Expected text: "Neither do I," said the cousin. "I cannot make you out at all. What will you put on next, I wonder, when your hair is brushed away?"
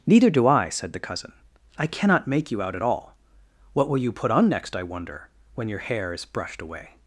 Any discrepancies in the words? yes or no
no